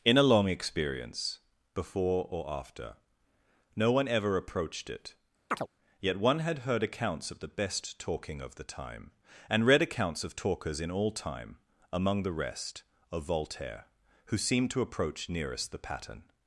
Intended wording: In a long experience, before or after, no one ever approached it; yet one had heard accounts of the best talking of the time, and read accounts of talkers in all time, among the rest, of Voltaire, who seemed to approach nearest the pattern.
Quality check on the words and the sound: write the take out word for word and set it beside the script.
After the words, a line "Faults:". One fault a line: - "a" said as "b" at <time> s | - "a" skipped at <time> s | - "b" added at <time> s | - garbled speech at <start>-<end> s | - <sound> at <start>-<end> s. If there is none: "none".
In a long experience, before or after, no one ever approached it; yet one had heard accounts of the best talking of the time, and read accounts of talkers in all time, among the rest, of Voltaire, who seemed to approach nearest the pattern.
Faults:
- chirp at 5.5-5.7 s